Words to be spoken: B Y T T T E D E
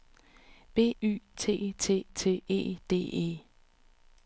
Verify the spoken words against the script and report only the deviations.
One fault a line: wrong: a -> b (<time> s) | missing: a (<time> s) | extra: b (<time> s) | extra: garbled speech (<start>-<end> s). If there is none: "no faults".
no faults